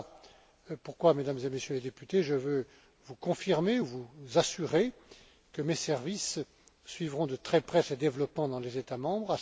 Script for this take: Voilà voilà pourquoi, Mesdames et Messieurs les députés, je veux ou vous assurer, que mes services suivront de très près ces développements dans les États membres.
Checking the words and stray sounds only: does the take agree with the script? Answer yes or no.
no